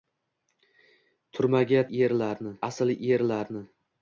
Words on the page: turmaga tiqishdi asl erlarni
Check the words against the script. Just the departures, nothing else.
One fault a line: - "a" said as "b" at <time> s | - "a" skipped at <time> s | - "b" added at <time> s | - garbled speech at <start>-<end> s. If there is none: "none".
- "tiqishdi" said as "erlarni" at 1.9 s